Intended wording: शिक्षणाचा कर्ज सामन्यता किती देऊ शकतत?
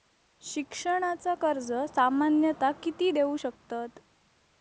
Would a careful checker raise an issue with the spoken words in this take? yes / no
no